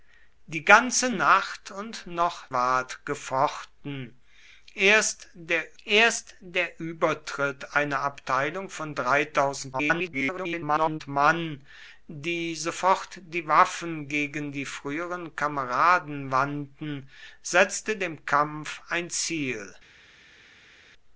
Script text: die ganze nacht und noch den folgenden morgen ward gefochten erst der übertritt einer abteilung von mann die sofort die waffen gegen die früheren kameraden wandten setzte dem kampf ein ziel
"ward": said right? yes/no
no